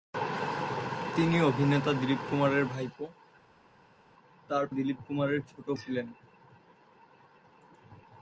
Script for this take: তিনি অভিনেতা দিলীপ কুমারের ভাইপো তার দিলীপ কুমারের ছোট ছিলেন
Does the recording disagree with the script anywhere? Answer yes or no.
no